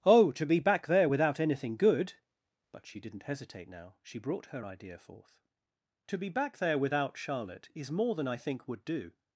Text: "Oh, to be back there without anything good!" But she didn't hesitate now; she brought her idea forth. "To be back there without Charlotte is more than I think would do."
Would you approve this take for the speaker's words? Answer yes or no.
yes